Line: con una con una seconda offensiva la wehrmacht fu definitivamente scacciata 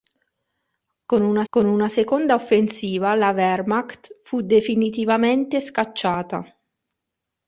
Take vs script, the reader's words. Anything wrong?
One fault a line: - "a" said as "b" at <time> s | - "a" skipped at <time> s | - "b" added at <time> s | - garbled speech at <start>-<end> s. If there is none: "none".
none